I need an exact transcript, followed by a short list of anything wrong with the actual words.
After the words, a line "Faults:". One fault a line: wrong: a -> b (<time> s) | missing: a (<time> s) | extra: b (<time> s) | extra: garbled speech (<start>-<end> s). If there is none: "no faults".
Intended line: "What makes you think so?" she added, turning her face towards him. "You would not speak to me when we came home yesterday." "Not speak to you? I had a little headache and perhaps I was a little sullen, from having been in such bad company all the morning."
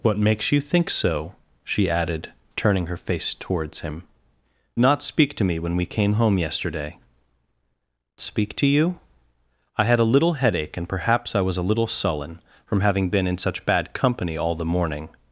"What makes you think so?" she added, turning her face towards him. "Not speak to me when we came home yesterday." "Speak to you? I had a little headache and perhaps I was a little sullen, from having been in such bad company all the morning."
Faults:
missing: You would (4.0 s)
missing: Not (7.0 s)